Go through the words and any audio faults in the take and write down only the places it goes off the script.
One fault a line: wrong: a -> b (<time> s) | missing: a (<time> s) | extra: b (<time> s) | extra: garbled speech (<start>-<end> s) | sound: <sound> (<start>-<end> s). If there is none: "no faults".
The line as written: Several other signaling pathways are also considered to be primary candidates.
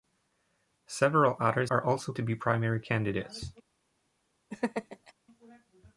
missing: signaling pathways (1.7 s)
missing: considered (2.1 s)
sound: laugh (4.5-5.1 s)